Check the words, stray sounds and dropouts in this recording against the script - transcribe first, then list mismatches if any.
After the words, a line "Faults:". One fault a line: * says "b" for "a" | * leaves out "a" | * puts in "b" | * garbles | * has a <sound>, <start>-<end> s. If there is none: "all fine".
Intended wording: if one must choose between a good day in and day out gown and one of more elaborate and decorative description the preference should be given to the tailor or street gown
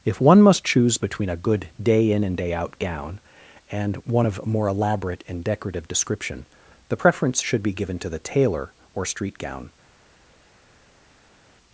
if one must choose between a good day in and day out gown and one of more elaborate and decorative description the preference should be given to the tailor or street gown
Faults:
all fine